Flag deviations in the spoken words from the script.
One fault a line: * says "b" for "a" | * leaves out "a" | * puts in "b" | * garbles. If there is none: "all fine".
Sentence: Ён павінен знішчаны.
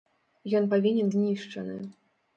all fine